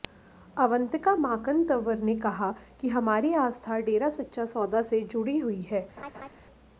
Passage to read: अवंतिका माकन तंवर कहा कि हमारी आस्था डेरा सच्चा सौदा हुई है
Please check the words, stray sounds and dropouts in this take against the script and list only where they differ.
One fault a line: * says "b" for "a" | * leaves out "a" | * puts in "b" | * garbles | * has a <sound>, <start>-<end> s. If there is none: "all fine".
* puts in "ने"
* puts in "से जुड़ी"
* has a laugh, 6.0-6.3 s